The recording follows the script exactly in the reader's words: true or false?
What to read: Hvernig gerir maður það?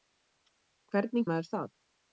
false